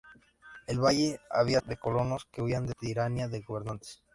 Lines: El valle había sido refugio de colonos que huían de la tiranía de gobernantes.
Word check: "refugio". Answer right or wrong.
wrong